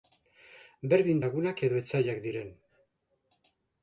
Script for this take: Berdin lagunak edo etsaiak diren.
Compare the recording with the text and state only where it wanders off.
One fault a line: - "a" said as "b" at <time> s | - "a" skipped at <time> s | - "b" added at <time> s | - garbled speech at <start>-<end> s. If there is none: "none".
none